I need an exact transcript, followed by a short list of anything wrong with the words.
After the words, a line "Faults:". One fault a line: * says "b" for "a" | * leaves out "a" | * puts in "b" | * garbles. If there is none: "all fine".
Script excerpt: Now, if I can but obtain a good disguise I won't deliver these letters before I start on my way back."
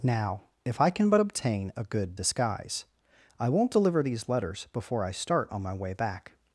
Now, if I can but obtain a good disguise I won't deliver these letters before I start on my way back."
Faults:
all fine